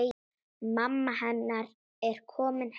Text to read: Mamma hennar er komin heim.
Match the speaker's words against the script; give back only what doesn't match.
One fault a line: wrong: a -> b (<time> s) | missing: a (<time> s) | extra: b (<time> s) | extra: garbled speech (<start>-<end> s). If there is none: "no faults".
no faults